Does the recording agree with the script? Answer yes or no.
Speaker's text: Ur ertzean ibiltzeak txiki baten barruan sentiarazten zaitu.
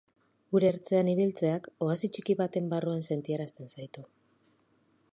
no